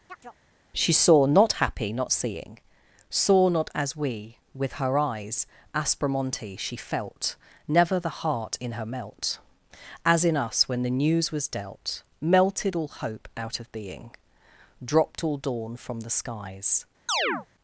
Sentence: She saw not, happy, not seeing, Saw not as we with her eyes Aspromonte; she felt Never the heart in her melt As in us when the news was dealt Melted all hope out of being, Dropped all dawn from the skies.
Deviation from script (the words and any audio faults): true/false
true